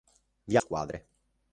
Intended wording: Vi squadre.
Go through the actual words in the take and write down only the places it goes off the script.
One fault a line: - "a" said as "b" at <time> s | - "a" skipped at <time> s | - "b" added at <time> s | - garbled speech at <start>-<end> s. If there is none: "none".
none